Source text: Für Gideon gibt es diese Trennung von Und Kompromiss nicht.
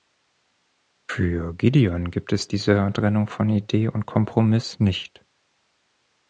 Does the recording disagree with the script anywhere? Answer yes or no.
yes